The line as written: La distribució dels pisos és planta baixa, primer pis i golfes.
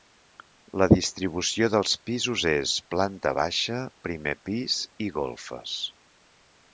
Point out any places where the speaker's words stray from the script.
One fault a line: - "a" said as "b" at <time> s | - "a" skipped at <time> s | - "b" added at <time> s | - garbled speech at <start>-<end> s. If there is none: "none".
none